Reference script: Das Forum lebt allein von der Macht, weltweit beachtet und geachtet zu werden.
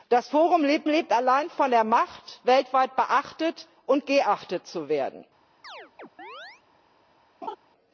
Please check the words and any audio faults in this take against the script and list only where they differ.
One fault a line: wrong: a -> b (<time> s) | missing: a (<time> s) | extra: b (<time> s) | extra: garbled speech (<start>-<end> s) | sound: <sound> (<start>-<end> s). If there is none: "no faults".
extra: lebt (0.9 s)
sound: chirp (5.6-6.6 s)
sound: laugh (7.4-7.6 s)